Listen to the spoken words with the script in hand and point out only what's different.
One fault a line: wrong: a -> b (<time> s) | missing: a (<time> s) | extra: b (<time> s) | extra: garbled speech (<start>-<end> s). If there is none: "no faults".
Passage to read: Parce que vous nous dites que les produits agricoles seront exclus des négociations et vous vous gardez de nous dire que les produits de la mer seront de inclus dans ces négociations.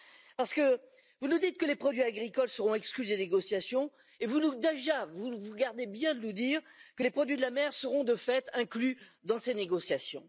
extra: bien (5.9 s)
extra: fait (8.2 s)